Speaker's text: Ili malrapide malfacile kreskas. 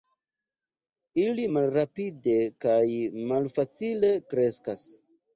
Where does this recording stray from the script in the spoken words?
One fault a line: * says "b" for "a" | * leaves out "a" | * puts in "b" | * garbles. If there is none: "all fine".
* puts in "kaj"